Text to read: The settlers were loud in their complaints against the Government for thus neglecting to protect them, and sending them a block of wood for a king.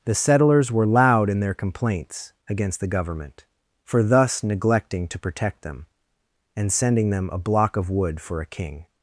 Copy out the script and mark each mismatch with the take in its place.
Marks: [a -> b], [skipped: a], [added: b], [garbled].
The settlers were loud in their complaints against the Government for thus neglecting to protect them, and sending them a block of wood for a king.